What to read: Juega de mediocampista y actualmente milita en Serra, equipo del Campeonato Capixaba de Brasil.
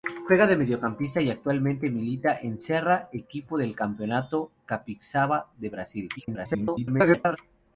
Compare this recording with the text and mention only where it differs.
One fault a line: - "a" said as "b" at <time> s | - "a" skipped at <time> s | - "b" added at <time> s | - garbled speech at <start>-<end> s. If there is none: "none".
- garbled speech at 6.2-7.4 s